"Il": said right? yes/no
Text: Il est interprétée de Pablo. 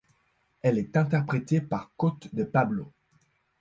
no